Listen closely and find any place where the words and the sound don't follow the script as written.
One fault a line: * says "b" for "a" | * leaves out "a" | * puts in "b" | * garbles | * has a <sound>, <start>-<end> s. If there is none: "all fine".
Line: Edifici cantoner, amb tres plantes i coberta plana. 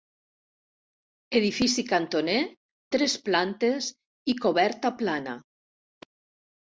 * leaves out "amb"